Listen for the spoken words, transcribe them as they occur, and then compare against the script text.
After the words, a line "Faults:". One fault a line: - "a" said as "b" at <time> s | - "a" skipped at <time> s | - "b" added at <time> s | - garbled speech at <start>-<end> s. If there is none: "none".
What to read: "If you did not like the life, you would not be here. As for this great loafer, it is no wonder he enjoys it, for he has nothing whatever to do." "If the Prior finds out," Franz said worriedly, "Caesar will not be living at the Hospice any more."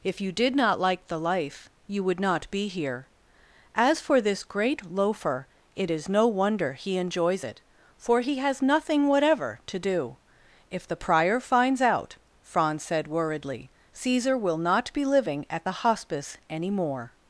"If you did not like the life, you would not be here. As for this great loafer, it is no wonder he enjoys it, for he has nothing whatever to do." "If the Prior finds out," Franz said worriedly, "Caesar will not be living at the Hospice any more."
Faults:
none